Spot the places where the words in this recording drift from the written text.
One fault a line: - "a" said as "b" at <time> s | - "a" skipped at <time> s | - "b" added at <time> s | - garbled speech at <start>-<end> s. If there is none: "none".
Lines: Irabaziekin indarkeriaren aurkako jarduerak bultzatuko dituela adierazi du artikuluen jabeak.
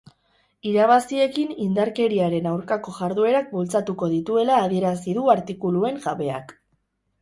none